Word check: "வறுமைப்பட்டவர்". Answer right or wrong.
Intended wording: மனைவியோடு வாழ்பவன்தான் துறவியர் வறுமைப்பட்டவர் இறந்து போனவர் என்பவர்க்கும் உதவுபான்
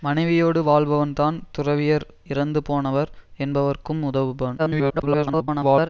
wrong